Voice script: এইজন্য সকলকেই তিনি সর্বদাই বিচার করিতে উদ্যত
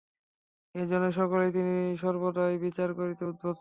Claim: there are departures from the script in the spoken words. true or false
false